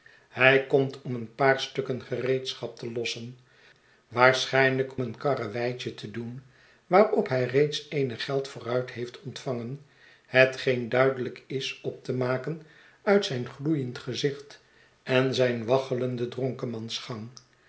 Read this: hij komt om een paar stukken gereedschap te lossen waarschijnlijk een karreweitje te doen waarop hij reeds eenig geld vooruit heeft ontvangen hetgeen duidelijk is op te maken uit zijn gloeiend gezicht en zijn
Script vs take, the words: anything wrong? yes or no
no